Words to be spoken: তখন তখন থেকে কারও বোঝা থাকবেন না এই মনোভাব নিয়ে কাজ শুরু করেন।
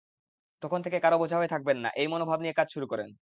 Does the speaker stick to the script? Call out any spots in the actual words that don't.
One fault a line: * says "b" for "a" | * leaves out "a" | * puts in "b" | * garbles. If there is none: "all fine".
* leaves out "তখন"
* puts in "হয়ে"